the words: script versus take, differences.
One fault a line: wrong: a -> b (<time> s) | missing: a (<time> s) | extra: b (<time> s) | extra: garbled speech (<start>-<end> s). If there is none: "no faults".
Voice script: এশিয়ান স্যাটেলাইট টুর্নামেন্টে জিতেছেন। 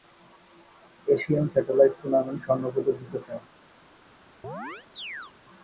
extra: স্বর্ণপদক (2.5 s)